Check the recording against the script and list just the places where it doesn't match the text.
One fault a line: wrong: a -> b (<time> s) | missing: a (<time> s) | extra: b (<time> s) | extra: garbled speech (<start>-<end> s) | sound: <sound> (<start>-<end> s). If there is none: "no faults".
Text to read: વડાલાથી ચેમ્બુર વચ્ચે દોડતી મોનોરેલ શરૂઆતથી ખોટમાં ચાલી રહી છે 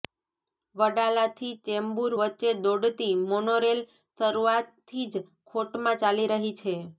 extra: જ (5.1 s)